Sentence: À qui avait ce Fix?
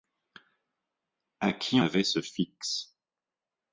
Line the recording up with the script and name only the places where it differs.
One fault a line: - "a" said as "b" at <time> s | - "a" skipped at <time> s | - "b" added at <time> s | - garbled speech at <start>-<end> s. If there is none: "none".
none